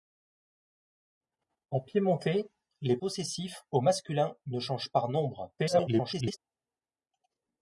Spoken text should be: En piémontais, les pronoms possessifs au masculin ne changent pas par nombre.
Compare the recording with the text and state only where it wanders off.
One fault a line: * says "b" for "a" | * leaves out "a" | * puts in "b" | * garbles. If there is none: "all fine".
* leaves out "pronoms"
* leaves out "pas"
* garbles